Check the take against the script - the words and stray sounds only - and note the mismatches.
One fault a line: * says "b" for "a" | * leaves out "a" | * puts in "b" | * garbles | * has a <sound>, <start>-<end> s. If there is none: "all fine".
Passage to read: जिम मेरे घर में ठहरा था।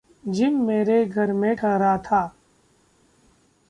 all fine